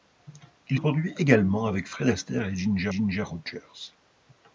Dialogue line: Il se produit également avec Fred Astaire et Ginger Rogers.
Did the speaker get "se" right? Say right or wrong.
wrong